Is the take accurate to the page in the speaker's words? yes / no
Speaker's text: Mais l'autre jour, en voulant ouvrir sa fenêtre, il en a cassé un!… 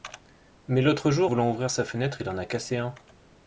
no